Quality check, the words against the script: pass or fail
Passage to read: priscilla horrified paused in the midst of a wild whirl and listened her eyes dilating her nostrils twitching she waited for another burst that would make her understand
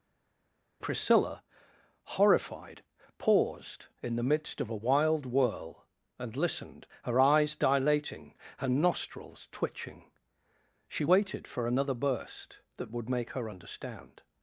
pass